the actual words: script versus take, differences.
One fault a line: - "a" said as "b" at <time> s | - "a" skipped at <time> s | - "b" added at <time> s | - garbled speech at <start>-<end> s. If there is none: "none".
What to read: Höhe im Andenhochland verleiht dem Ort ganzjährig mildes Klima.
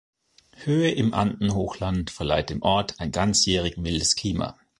- "ein" added at 3.0 s